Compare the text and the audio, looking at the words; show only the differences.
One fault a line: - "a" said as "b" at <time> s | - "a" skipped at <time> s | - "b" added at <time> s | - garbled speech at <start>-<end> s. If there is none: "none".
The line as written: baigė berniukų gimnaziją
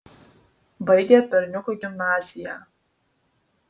none